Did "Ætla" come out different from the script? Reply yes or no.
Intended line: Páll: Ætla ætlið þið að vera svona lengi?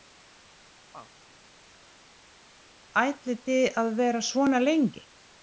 yes